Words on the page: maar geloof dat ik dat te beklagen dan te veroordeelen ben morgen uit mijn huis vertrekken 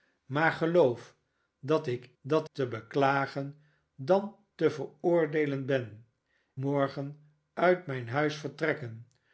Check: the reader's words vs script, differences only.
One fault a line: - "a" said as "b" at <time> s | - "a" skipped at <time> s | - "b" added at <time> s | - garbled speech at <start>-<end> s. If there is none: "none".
none